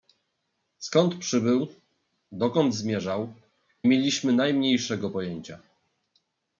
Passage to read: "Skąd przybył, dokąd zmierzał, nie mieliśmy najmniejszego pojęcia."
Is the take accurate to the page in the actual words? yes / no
no